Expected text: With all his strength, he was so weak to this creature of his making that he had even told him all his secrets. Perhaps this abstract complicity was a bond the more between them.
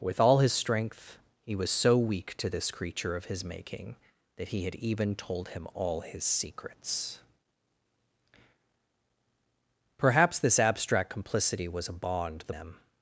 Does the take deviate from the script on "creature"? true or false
false